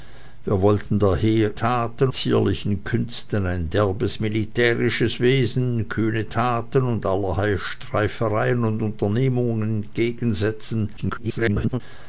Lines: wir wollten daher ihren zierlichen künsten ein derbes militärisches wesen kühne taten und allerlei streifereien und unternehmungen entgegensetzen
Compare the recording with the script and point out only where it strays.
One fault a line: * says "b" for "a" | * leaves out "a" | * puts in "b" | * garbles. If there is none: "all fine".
* says "taten" for "ihren"
* garbles